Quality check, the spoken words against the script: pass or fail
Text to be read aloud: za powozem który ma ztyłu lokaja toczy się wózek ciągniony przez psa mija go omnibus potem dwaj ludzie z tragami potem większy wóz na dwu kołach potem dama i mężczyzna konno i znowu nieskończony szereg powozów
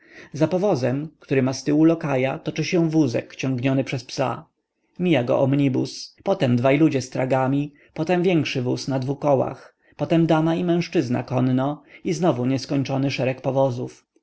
pass